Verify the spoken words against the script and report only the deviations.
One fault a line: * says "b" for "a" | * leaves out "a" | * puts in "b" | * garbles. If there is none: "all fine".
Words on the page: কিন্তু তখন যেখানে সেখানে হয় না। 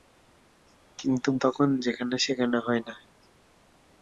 all fine